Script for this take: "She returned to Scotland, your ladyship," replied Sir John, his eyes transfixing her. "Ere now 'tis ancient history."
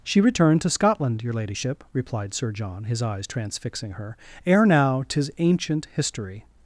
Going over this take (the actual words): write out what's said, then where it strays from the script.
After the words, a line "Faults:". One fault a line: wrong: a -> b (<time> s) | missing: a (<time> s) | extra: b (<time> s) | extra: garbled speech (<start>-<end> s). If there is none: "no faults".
"She returned to Scotland, your ladyship," replied Sir John, his eyes transfixing her. "Ere now 'tis ancient history."
Faults:
no faults